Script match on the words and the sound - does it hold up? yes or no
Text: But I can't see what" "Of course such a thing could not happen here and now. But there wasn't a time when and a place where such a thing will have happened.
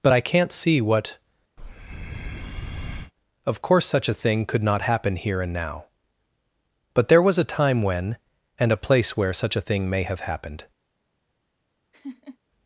no